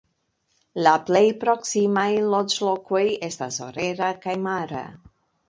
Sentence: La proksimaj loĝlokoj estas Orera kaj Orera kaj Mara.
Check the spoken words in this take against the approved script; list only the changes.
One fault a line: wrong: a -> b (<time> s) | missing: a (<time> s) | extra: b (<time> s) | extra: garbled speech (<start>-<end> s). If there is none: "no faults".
extra: plej (1.1 s)
missing: Orera kaj (4.4 s)